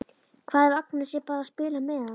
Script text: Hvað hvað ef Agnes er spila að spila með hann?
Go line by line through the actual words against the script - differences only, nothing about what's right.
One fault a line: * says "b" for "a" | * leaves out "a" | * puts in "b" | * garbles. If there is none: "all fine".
* leaves out "hvað"
* says "bara" for "spila"